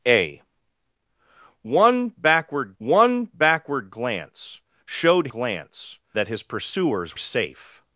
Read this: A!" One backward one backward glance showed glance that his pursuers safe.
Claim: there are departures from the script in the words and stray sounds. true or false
false